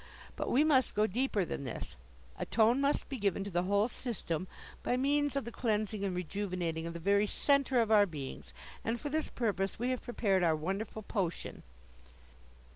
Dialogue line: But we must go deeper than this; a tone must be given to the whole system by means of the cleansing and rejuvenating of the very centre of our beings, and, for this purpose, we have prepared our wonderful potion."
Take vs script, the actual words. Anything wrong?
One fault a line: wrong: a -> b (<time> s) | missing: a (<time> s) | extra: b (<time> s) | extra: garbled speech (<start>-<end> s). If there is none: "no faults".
no faults